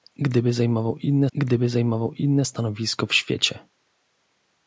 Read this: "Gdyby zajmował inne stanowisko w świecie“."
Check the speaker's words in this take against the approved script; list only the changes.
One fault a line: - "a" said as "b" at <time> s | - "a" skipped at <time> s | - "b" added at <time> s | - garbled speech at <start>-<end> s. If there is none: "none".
- "gdyby zajmował inne" added at 1.3 s